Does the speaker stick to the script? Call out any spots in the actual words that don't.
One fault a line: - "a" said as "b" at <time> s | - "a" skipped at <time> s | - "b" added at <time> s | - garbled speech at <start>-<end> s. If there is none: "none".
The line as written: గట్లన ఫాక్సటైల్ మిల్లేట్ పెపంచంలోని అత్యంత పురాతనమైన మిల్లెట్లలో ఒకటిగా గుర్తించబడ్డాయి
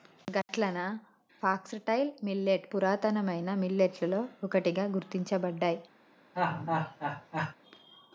- "పెపంచంలోని అత్యంత" skipped at 2.6 s